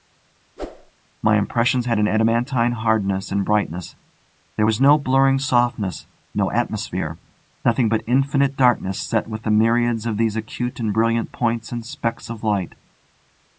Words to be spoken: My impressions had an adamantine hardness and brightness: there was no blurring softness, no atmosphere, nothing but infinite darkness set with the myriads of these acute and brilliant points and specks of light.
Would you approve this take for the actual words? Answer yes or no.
yes